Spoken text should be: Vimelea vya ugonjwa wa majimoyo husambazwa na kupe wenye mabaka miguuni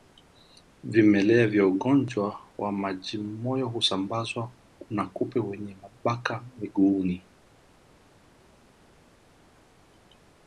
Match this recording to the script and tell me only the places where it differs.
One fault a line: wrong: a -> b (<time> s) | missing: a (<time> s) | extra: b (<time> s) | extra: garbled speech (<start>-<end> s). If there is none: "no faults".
no faults